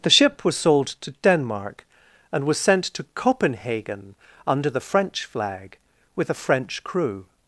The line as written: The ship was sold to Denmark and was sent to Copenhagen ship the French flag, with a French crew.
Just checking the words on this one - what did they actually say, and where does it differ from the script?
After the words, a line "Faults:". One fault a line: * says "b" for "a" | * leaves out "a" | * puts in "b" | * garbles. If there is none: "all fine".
The ship was sold to Denmark and was sent to Copenhagen under the French flag, with a French crew.
Faults:
* says "under" for "ship"